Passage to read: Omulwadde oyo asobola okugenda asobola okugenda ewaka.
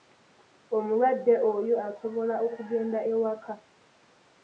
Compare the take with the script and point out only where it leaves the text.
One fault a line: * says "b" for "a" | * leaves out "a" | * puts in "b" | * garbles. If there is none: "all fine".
* leaves out "asobola okugenda"